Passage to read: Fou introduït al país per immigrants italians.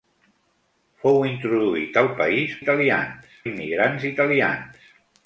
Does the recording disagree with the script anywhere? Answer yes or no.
yes